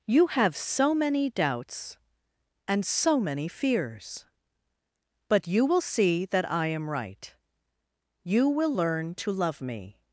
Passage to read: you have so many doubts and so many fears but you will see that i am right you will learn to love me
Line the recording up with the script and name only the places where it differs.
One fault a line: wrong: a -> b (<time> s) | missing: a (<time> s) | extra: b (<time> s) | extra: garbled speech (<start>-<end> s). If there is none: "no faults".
no faults